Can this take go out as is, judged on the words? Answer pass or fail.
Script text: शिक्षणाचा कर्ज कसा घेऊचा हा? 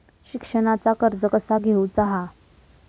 pass